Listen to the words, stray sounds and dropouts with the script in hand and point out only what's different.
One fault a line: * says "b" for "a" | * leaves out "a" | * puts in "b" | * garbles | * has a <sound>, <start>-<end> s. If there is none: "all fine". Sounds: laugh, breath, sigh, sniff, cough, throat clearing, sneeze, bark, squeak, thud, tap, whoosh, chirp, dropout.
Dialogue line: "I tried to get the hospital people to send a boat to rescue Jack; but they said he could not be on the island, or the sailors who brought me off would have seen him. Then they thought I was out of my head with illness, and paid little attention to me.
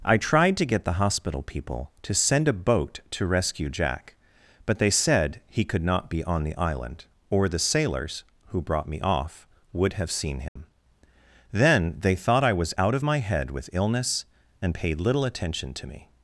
* has a dropout, 10.5-10.6 s